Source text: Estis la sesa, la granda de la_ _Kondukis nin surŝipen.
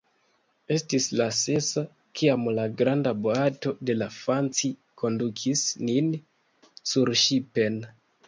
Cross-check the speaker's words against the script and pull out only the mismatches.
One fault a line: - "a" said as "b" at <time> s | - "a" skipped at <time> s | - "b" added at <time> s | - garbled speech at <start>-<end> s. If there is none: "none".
- "kiam" added at 2.2 s
- "boato" added at 3.3 s
- "Fanci" added at 4.2 s